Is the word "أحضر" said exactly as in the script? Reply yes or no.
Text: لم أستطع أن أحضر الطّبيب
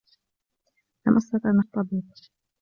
no